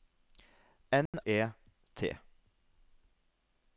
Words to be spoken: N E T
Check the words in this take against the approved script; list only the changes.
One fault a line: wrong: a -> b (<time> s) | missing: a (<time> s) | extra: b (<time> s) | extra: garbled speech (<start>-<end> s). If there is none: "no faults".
no faults